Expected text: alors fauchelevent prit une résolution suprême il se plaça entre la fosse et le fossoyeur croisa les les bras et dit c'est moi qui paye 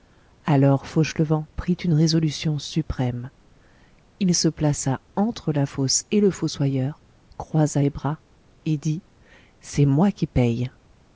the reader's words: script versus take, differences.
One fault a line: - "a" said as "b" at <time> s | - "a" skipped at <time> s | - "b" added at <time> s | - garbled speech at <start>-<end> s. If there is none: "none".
- "les" skipped at 7.9 s